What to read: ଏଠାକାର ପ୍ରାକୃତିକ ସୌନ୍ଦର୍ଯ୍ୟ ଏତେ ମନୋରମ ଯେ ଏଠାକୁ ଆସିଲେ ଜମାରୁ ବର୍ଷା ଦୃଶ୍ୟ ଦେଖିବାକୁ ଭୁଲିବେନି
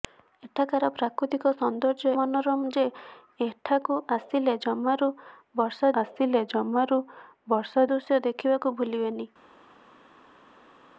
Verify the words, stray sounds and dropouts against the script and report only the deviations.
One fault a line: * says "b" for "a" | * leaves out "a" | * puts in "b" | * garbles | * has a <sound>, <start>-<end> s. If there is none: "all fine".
* leaves out "ଏତେ"
* puts in "ଆସିଲେ ଜମାରୁ ବର୍ଷା"